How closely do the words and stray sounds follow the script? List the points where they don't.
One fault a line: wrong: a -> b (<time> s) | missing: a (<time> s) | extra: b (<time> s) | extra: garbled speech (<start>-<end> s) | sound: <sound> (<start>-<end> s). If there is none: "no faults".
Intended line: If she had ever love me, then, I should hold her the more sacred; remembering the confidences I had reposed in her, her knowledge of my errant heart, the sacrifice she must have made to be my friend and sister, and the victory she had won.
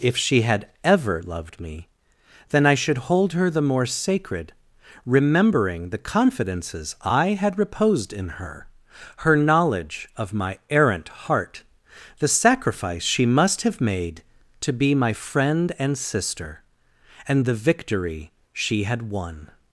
wrong: love -> loved (1.2 s)